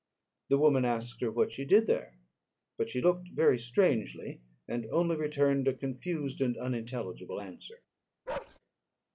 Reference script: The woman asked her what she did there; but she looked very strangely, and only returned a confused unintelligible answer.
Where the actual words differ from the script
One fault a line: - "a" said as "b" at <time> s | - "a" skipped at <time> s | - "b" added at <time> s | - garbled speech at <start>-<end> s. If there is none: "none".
- "and" added at 6.4 s